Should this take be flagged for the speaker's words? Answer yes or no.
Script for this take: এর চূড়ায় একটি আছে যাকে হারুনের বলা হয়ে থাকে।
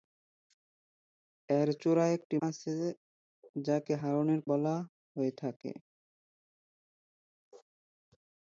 no